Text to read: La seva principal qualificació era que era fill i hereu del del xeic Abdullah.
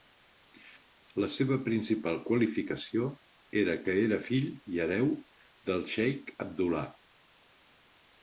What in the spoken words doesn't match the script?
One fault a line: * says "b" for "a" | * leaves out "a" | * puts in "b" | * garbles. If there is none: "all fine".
* leaves out "del"